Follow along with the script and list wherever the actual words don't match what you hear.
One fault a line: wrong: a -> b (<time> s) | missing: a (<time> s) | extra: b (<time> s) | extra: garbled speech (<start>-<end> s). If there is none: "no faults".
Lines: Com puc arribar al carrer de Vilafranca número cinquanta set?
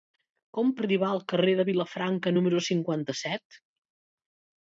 missing: puc (0.7 s)